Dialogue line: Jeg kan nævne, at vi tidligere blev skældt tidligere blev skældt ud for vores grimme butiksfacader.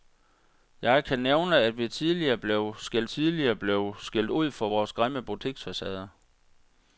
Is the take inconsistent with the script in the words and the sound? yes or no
no